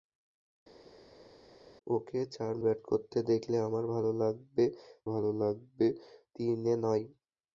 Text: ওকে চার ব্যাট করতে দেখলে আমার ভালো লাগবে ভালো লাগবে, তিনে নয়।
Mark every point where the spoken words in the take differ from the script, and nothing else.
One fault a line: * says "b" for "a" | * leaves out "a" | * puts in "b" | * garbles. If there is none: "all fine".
all fine